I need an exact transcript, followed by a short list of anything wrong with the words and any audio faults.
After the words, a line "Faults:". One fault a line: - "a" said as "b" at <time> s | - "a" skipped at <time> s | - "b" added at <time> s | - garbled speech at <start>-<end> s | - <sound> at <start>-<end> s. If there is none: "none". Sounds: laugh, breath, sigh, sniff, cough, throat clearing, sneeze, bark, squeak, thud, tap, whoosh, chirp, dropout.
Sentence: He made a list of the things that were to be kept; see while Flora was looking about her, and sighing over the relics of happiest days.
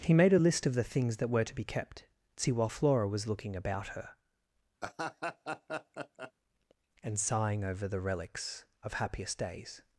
He made a list of the things that were to be kept; see while Flora was looking about her, and sighing over the relics of happiest days.
Faults:
- laugh at 4.8-6.3 s